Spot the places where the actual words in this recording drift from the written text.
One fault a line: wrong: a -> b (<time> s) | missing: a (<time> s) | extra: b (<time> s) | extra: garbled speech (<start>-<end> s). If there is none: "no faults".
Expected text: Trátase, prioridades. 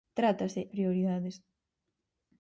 no faults